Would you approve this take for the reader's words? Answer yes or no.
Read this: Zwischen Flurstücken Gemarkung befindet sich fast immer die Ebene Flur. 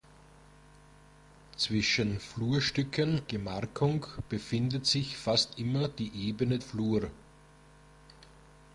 yes